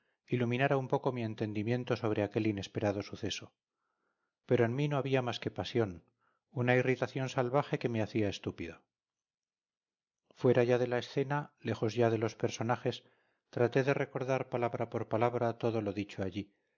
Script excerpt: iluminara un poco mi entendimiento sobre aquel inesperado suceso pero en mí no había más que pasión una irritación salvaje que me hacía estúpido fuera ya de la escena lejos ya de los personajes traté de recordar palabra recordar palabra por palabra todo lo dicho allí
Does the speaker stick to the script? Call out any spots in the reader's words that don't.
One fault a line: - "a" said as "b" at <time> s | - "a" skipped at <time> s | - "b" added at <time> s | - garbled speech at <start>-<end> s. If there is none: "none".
- "recordar palabra" skipped at 14.9 s